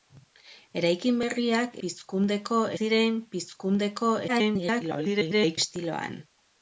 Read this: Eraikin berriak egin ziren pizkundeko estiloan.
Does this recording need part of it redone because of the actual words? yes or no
yes